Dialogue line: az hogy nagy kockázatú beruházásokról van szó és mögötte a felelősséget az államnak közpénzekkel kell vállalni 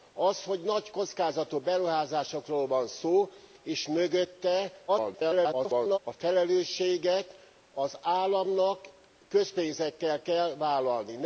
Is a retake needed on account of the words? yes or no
yes